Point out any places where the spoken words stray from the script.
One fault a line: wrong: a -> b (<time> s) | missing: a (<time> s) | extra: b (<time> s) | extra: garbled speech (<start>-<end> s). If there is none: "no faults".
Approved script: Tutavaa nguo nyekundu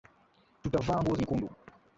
no faults